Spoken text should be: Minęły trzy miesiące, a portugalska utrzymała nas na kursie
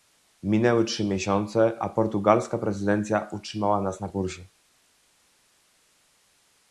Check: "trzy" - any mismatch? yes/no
no